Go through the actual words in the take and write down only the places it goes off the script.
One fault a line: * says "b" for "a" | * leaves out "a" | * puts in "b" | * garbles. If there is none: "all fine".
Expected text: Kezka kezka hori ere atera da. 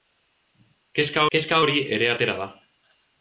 all fine